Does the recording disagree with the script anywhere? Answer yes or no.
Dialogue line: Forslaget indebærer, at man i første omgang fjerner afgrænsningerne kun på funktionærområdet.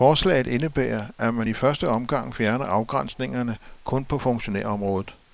no